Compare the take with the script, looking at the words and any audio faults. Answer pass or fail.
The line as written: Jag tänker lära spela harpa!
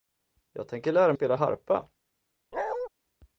fail